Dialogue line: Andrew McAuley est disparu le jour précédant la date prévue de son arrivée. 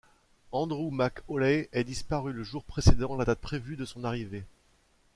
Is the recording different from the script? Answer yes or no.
no